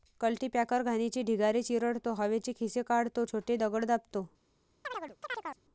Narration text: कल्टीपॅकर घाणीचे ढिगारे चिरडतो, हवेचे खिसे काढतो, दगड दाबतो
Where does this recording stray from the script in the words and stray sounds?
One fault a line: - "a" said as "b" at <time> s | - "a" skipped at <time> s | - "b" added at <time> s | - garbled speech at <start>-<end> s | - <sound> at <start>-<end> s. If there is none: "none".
- "छोटे" added at 3.2 s
- chirp at 4.8-5.6 s